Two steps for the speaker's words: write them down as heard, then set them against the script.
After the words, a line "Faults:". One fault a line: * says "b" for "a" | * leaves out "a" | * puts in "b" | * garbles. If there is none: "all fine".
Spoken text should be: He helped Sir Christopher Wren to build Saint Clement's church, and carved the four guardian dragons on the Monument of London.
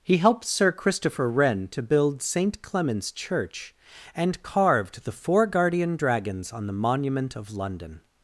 He helped Sir Christopher Wren to build Saint Clement's church, and carved the four guardian dragons on the Monument of London.
Faults:
all fine